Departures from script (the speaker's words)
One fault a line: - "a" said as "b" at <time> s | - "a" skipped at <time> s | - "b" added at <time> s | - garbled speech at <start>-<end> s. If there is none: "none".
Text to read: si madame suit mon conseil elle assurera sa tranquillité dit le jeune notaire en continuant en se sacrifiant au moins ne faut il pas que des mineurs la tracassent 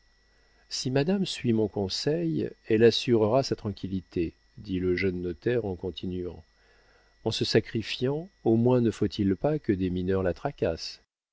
none